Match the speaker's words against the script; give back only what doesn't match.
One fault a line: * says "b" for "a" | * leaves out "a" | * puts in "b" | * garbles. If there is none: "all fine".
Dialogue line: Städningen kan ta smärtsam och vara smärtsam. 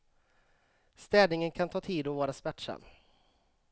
* says "tid" for "smärtsam"